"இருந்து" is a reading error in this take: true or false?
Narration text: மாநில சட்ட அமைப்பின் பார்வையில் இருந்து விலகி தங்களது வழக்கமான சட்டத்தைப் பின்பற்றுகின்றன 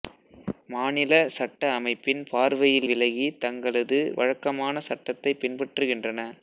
true